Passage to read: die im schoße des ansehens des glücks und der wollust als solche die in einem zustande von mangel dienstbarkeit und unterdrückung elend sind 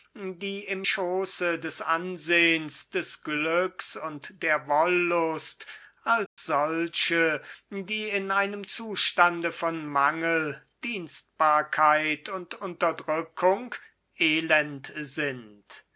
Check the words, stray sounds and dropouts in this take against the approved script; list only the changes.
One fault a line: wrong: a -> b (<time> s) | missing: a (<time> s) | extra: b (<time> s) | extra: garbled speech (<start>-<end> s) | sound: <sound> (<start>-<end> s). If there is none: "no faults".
sound: dropout (6.3-6.4 s)